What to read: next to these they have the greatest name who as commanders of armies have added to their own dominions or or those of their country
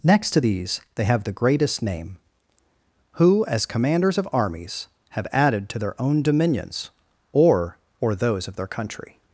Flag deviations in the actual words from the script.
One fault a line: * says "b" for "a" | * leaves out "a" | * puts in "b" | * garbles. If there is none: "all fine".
all fine